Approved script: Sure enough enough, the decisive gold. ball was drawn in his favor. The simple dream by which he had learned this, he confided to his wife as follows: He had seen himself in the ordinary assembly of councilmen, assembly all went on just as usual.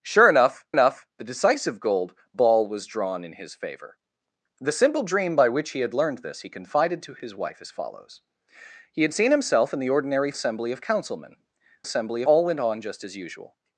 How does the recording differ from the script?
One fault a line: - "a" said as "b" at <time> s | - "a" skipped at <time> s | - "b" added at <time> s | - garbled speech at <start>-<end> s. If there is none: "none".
none